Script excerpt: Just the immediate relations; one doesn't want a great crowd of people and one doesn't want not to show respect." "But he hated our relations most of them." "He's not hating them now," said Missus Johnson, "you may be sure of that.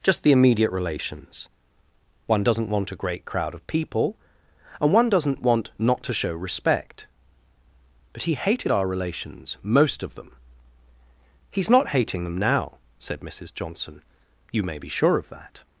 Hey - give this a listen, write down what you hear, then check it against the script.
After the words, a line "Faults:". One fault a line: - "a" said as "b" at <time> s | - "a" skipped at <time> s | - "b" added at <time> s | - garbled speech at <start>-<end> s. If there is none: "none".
Just the immediate relations; one doesn't want a great crowd of people and one doesn't want not to show respect." "But he hated our relations most of them." "He's not hating them now," said Missus Johnson, "you may be sure of that.
Faults:
none